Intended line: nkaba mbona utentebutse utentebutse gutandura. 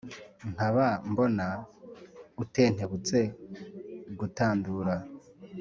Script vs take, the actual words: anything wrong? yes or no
yes